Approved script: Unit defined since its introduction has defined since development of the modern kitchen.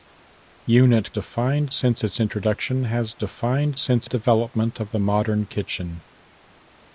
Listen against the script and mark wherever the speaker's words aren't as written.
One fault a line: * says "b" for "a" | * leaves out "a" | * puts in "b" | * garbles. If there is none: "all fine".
all fine